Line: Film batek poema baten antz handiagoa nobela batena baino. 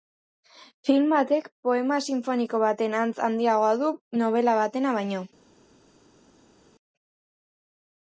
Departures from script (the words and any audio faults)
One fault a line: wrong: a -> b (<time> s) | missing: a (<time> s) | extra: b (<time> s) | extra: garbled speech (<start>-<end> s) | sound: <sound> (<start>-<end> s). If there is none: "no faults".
extra: sinfoniko (2.1 s)
extra: du (3.8 s)